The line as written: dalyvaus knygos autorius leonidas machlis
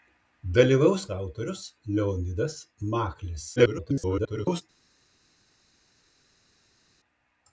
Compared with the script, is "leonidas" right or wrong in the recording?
right